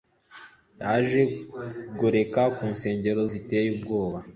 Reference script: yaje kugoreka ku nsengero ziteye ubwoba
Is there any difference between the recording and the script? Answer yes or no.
no